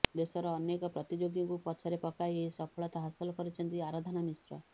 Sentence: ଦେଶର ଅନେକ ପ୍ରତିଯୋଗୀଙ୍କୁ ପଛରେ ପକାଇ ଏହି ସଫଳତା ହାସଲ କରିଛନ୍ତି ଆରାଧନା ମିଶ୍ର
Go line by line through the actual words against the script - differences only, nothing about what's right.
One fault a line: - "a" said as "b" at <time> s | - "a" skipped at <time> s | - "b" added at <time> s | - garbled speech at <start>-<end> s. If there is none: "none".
none